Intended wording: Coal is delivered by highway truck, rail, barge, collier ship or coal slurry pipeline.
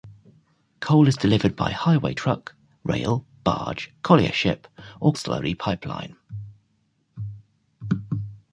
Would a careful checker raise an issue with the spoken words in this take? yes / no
yes